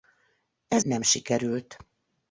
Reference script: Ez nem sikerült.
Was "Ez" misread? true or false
false